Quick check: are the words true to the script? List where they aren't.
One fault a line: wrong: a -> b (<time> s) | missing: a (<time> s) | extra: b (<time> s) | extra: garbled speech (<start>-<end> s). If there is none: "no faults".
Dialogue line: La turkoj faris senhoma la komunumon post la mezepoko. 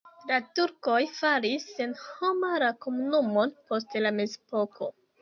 no faults